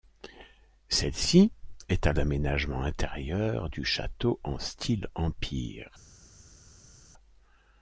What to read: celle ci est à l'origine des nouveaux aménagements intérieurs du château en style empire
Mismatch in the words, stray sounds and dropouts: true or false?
true